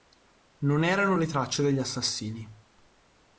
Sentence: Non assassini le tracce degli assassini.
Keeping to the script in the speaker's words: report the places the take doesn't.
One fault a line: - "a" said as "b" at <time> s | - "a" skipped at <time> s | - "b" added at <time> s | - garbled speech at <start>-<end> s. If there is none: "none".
- "assassini" said as "erano" at 0.8 s